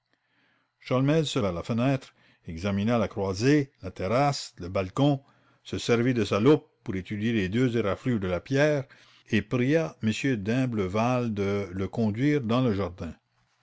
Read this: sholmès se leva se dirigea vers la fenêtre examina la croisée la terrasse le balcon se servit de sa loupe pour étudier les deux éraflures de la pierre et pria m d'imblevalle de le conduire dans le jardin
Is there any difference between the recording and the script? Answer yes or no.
yes